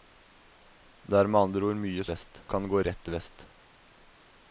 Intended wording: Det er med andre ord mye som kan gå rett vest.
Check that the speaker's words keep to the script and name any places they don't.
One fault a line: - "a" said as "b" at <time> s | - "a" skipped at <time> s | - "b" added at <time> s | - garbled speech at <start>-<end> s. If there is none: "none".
- "som" said as "vest" at 2.1 s